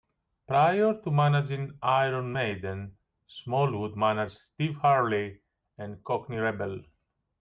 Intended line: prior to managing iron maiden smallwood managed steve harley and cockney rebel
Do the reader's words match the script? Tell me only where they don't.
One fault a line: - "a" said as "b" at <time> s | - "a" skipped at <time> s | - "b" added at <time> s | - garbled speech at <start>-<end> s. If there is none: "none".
none